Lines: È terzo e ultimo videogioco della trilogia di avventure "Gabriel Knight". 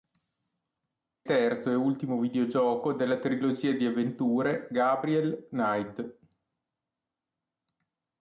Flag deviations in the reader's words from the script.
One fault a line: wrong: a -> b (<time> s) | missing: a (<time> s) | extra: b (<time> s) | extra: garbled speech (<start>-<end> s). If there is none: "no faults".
no faults